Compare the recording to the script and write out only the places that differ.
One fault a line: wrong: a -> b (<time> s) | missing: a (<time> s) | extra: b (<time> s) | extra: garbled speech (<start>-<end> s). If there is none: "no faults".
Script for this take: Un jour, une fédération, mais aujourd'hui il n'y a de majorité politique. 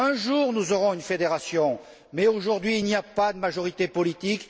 extra: nous aurons (0.5 s)
extra: pas (3.0 s)